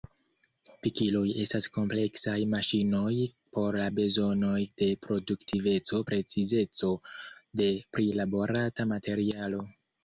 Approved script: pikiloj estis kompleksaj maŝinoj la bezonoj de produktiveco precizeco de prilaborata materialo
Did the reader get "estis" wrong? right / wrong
wrong